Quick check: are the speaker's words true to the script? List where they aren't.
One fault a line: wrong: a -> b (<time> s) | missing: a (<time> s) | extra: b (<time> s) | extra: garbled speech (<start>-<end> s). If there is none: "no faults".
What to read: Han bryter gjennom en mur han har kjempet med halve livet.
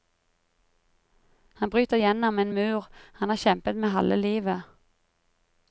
no faults